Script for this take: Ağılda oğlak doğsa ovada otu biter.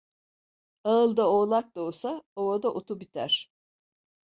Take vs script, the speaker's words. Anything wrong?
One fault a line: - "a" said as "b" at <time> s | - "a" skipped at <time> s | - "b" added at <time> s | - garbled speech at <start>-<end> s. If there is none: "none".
none